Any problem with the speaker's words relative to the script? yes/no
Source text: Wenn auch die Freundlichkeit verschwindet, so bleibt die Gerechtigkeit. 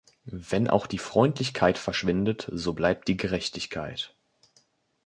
no